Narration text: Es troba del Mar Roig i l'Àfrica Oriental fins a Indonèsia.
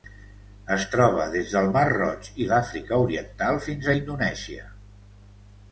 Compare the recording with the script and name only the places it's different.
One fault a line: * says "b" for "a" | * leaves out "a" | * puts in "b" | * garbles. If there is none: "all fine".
* puts in "des"